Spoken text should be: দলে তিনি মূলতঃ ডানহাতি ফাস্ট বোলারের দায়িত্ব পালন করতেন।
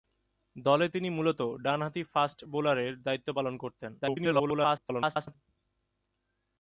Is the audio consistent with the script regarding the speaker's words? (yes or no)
no